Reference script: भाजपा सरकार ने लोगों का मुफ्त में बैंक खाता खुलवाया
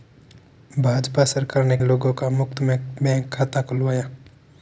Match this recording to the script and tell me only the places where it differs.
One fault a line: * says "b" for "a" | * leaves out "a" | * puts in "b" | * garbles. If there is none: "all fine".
all fine